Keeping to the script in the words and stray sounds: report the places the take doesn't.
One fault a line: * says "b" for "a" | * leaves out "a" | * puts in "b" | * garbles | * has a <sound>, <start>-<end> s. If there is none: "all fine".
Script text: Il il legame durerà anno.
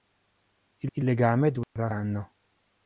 * has a dropout, 1.6-1.8 s